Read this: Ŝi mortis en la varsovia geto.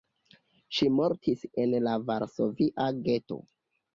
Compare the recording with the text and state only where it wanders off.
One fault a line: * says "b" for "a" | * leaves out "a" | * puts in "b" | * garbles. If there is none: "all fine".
all fine